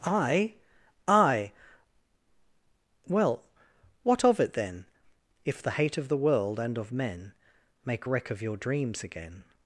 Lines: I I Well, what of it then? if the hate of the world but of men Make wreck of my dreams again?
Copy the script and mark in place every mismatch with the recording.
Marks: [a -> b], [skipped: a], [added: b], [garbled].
I I Well, what of it then? if the hate of the world [but -> and] of men Make wreck of [my -> your] dreams again?